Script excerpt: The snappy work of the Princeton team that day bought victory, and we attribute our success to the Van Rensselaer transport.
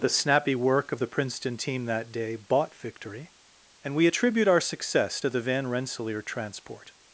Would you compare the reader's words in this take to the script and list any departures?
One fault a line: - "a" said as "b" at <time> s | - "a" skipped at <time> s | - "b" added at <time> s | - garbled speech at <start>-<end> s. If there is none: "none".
none